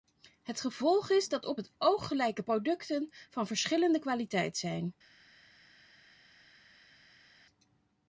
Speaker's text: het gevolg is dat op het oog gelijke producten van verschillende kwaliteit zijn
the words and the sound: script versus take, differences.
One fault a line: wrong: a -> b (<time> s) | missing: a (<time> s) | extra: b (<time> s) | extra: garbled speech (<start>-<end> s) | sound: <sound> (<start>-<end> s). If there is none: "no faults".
no faults